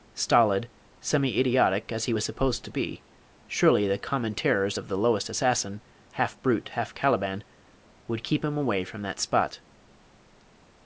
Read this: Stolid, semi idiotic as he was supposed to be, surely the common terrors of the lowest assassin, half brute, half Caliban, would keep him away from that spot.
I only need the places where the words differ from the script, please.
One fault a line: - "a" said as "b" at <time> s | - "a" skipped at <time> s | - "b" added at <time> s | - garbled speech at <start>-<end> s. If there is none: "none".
none